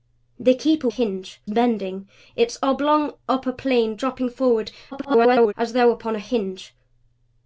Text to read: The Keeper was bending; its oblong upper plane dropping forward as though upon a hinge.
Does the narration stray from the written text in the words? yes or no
yes